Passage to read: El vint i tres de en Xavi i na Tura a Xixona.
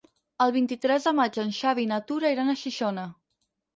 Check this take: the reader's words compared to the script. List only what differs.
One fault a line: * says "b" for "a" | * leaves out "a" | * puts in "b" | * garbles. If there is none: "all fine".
* puts in "maig"
* puts in "iran"